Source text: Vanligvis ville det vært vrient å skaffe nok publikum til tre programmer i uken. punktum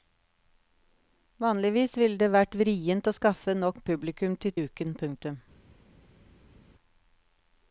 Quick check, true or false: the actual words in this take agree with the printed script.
false